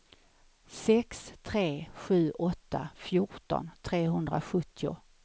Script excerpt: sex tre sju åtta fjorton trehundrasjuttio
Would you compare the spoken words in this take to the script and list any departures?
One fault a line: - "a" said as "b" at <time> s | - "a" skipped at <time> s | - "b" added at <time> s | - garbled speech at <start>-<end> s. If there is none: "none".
none